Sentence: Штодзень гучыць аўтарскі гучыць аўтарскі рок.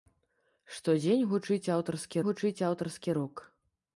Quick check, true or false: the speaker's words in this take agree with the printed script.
true